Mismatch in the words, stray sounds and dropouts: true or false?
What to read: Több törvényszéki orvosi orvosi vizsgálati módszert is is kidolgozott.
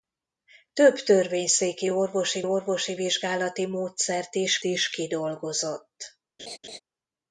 true